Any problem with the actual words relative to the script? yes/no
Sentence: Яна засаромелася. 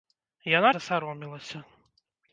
no